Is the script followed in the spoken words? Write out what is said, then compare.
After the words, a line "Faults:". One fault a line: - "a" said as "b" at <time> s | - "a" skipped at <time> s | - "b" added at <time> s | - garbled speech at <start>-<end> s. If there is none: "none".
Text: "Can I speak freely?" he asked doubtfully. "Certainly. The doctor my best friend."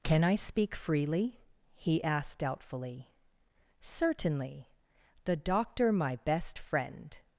"Can I speak freely?" he asked doubtfully. "Certainly. The doctor my best friend."
Faults:
none